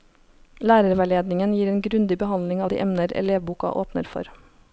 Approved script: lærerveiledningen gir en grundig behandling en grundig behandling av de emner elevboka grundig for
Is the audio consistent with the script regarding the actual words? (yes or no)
no